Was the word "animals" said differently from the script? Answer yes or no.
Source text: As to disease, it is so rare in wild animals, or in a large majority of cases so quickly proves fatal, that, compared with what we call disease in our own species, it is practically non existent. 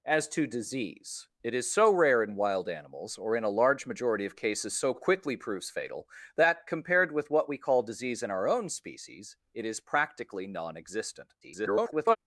no